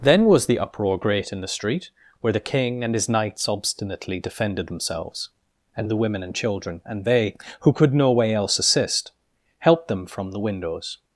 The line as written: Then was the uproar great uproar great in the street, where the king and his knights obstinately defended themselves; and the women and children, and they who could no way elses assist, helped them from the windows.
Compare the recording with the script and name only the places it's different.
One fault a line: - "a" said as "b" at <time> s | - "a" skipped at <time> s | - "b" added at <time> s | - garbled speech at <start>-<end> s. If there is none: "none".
- "uproar great" skipped at 1.3 s
- "elses" said as "else" at 8.3 s